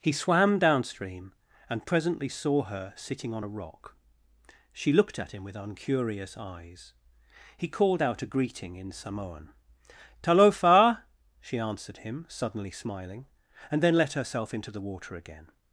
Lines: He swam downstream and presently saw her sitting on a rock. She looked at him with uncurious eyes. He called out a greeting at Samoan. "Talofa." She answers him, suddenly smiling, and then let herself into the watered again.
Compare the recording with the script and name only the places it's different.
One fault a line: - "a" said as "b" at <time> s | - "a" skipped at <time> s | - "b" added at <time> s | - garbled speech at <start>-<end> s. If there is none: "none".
- "at" said as "in" at 8.8 s
- "answers" said as "answered" at 11.6 s
- "watered" said as "water" at 14.8 s